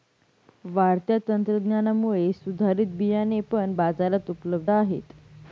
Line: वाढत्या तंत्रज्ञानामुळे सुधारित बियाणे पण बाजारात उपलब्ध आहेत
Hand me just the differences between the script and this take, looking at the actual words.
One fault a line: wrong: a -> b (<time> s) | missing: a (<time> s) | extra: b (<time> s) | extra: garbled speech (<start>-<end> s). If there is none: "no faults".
no faults